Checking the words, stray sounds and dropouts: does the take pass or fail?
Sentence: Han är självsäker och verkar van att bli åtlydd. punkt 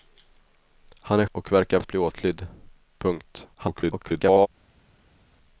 fail